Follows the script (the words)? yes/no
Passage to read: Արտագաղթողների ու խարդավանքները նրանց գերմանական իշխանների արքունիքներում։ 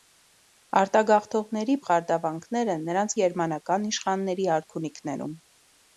yes